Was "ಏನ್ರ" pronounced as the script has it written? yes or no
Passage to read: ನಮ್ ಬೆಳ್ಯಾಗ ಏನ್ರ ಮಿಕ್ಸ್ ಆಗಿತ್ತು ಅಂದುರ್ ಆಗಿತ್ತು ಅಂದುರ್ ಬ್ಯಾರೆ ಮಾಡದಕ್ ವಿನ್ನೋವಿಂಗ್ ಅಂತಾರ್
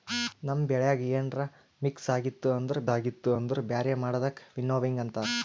yes